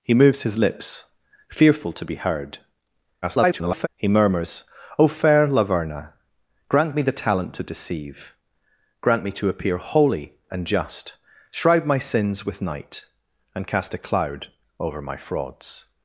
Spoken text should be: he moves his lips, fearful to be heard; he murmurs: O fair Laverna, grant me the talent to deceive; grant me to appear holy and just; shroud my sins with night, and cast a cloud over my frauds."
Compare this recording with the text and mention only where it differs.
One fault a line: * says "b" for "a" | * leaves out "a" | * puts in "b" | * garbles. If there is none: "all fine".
* garbles